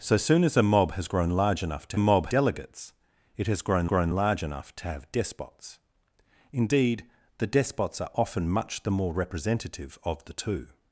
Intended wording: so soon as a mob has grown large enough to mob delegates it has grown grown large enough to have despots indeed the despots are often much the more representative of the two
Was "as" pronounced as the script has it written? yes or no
yes